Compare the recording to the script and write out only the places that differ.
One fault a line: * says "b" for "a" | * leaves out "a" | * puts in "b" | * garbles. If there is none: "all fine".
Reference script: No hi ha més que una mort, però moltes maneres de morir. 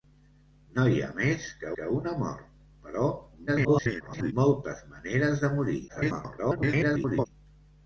* puts in "que"
* garbles
* garbles